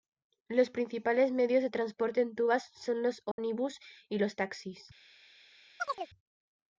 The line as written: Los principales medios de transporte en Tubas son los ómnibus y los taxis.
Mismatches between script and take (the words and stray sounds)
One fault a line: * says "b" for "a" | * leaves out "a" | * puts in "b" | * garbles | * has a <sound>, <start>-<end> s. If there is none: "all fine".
* has a dropout, 3.3-3.4 s
* has a chirp, 5.8-6.1 s